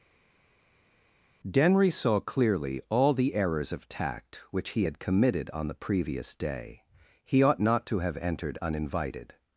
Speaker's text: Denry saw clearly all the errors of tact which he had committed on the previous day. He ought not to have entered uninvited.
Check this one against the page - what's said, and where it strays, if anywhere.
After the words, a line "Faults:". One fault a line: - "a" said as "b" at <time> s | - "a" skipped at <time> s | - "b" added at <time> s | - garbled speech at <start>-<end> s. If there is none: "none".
Denry saw clearly all the errors of tact which he had committed on the previous day. He ought not to have entered uninvited.
Faults:
none